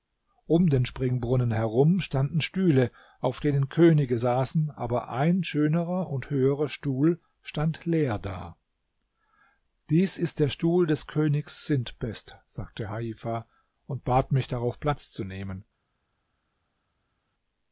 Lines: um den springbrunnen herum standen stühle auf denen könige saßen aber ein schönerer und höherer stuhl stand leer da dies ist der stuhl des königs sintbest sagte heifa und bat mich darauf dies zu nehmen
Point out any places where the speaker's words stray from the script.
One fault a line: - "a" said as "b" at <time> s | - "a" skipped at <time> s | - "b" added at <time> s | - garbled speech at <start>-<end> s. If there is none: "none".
- "dies" said as "platz" at 14.8 s